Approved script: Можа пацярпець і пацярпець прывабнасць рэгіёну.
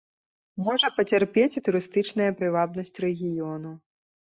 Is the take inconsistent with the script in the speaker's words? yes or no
yes